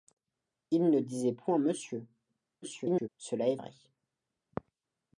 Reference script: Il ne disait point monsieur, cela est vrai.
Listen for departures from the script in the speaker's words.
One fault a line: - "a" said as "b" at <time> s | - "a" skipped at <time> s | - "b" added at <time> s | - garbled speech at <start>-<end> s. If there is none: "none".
- garbled speech at 2.6-3.1 s